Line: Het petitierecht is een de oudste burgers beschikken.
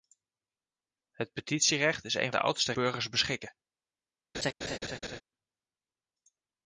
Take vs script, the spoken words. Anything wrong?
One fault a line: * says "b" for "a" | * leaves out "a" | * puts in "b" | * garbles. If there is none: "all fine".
all fine